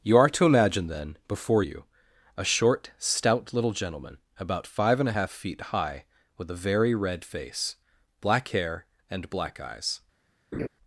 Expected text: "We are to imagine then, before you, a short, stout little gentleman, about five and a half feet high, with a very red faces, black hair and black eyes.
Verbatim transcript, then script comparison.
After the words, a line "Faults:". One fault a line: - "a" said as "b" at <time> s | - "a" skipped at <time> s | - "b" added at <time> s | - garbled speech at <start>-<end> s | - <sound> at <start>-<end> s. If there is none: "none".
"You are to imagine then, before you, a short, stout little gentleman, about five and a half feet high, with a very red face, black hair and black eyes.
Faults:
- "We" said as "You" at 0.0 s
- "faces" said as "face" at 7.2 s
- laugh at 10.5-10.7 s